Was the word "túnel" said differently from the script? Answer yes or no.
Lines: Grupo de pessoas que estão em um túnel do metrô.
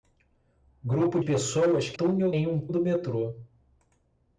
yes